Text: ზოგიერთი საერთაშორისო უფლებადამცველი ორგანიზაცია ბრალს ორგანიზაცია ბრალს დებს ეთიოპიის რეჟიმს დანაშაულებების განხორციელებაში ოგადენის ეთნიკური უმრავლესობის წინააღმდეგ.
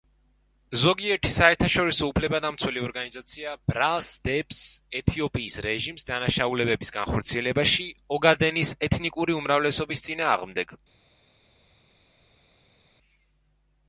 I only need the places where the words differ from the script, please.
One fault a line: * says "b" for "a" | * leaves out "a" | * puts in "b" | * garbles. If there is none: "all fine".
* leaves out "ორგანიზაცია ბრალს"